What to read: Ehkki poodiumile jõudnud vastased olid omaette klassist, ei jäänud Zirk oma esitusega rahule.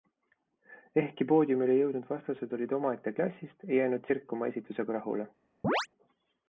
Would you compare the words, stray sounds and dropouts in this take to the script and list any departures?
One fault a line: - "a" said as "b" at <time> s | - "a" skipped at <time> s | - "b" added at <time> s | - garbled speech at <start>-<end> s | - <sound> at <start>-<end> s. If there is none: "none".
- chirp at 5.6-5.9 s